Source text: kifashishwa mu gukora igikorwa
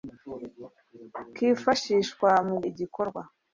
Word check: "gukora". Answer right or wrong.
wrong